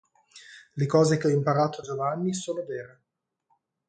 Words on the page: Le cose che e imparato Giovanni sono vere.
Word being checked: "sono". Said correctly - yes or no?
yes